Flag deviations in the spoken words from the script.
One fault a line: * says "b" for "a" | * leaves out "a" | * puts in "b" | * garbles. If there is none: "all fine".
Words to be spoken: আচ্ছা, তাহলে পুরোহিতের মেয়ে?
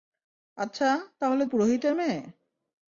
all fine